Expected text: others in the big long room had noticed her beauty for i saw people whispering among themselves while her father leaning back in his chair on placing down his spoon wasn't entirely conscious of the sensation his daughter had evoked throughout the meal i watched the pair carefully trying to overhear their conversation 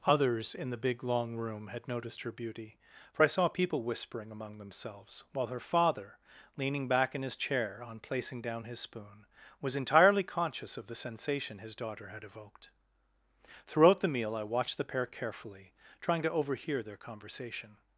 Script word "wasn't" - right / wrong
wrong